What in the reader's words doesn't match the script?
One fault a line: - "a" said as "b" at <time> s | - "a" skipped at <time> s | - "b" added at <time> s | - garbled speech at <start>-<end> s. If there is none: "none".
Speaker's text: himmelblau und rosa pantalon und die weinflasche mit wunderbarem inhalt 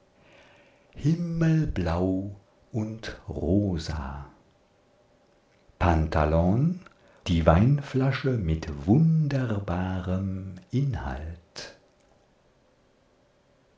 - "und" skipped at 6.8 s